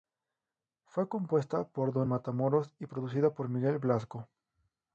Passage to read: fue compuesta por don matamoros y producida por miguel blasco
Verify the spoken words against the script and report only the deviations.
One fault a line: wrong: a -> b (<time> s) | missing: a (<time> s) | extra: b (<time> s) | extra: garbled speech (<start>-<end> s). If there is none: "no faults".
no faults